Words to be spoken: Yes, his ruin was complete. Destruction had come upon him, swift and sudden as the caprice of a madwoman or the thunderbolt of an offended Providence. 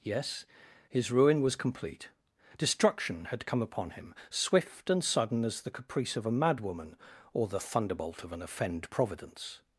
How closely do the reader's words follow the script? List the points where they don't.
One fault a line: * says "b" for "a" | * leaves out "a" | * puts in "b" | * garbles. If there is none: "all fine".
* says "offend" for "offended"